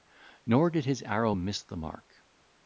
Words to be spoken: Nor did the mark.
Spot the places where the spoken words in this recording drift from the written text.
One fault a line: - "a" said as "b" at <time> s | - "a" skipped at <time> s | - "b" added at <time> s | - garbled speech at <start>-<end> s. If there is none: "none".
- "his arrow miss" added at 0.8 s